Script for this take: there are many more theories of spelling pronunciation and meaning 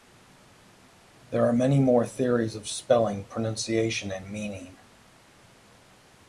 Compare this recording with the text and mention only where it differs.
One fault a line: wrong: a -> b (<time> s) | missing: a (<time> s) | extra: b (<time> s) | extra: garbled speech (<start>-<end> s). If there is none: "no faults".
no faults